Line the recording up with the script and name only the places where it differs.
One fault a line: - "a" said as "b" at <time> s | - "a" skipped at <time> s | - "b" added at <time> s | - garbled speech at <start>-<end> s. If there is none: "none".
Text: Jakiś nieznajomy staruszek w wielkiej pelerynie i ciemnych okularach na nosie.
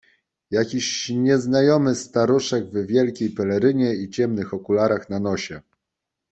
none